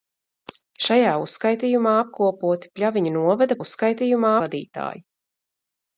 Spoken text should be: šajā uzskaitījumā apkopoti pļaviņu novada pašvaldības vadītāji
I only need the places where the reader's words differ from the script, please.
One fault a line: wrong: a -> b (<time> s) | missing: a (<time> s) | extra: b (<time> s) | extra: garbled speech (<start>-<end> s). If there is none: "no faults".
wrong: pašvaldības -> uzskaitījumā (3.6 s)